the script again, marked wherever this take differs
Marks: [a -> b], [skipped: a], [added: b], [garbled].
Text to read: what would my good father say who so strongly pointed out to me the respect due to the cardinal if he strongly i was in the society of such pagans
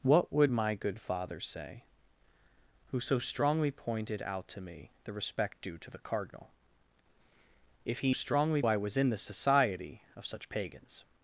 what would my good father say who so strongly pointed out to me the respect due to the cardinal if he strongly i was in the society of such pagans